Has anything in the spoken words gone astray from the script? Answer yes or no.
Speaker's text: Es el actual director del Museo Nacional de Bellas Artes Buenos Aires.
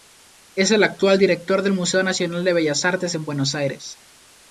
yes